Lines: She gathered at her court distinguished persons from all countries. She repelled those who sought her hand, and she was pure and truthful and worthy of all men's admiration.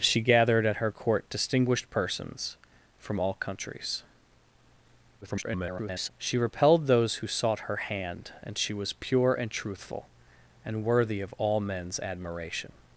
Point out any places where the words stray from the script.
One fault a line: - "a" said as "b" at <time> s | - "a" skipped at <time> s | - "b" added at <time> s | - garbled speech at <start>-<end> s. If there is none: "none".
- garbled speech at 5.2-6.1 s